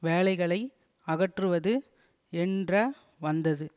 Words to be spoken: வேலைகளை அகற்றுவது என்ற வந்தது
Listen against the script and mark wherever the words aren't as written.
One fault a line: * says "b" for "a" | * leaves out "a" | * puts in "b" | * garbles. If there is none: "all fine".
all fine